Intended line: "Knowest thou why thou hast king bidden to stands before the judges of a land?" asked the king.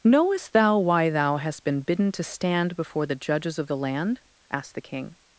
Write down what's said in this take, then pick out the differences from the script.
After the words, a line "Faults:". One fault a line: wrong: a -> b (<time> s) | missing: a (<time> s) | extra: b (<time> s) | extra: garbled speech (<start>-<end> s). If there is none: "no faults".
"Knowest thou why thou hast been bidden to stand before the judges of the land?" asked the king.
Faults:
wrong: king -> been (1.6 s)
wrong: stands -> stand (2.2 s)
wrong: a -> the (3.7 s)